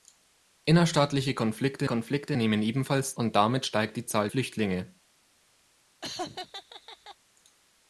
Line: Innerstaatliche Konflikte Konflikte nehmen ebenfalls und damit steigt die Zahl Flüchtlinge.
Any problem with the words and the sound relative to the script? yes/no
yes